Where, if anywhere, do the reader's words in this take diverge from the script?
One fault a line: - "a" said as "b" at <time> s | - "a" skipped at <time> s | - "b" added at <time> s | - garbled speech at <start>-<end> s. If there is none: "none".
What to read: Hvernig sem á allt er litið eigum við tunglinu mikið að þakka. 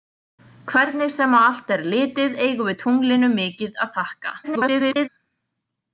- garbled speech at 4.4-5.1 s